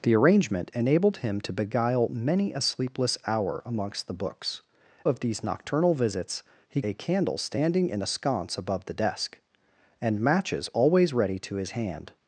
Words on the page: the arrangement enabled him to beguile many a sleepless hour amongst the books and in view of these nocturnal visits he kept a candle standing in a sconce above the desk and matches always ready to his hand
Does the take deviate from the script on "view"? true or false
true